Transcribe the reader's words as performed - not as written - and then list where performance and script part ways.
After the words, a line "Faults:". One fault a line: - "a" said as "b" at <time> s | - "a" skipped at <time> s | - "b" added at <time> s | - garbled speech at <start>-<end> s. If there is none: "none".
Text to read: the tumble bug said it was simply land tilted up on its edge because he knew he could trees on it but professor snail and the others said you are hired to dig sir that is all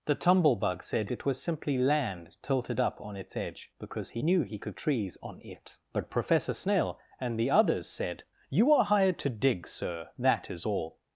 the tumble bug said it was simply land tilted up on its edge because he knew he could trees on it but professor snail and the others said you are hired to dig sir that is all
Faults:
none